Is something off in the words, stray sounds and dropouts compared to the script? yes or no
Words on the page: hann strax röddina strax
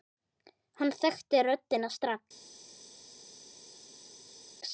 yes